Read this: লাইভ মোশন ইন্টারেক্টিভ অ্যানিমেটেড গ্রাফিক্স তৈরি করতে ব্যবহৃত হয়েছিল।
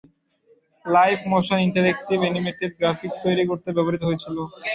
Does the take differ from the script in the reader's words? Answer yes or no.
no